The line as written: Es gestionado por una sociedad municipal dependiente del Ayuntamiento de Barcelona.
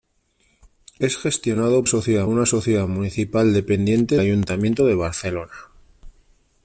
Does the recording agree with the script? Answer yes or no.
no